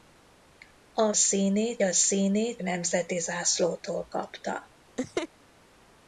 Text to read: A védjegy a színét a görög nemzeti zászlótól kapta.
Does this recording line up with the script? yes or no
no